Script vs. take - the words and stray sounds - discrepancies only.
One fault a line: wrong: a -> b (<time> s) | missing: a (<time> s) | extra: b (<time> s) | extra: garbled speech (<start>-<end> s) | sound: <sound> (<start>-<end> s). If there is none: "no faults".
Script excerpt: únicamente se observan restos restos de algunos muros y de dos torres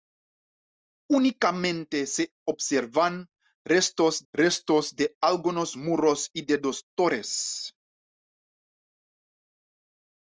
no faults